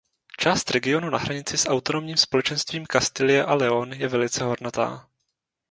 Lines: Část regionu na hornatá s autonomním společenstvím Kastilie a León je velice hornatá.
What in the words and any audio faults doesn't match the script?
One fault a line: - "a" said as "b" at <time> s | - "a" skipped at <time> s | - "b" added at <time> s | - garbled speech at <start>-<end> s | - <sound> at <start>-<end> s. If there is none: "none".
- "hornatá" said as "hranici" at 1.2 s